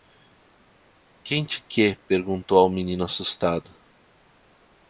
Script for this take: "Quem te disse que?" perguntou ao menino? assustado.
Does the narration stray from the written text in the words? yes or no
yes